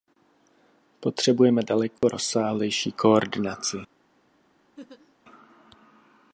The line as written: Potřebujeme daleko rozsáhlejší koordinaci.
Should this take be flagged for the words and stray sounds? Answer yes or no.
yes